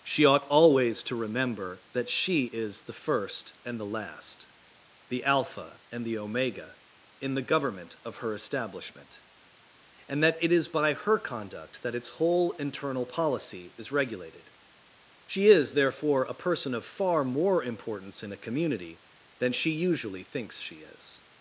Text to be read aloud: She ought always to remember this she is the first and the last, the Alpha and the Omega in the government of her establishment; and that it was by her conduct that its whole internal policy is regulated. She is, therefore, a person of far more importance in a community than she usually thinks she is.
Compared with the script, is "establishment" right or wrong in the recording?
right